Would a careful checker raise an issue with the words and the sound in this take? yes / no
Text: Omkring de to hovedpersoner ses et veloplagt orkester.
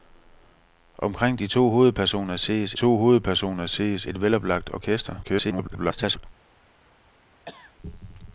yes